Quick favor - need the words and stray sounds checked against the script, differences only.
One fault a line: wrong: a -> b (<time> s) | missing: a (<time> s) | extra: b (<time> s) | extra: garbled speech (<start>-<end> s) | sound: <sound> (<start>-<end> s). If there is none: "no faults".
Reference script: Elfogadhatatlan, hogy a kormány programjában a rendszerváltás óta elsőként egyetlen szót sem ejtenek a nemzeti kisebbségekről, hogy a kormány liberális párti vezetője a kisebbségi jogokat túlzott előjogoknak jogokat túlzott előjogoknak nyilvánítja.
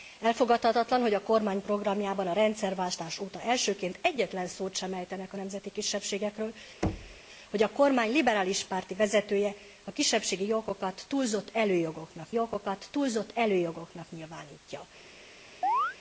sound: thud (6.8-7.2 s)
sound: chirp (15.6-16.0 s)